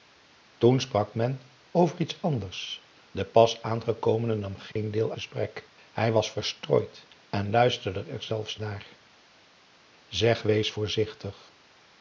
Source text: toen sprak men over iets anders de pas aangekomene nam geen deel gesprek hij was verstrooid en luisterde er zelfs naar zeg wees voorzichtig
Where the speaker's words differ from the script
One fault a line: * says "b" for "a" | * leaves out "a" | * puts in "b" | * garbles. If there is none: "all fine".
all fine